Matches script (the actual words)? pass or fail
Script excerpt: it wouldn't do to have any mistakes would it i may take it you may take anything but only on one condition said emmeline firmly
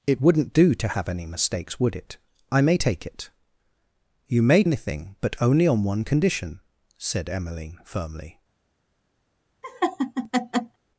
fail